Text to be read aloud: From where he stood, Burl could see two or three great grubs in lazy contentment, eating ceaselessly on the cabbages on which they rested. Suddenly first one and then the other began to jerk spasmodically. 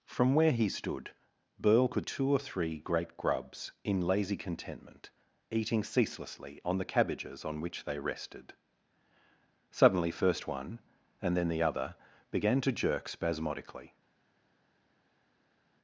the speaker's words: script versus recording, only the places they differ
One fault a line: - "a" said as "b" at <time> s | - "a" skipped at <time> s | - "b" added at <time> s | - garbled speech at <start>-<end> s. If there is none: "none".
- "see" skipped at 2.1 s